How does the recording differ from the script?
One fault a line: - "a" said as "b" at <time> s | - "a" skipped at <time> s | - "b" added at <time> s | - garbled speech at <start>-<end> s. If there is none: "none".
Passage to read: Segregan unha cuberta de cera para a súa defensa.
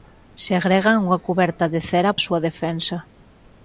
- "para" skipped at 2.1 s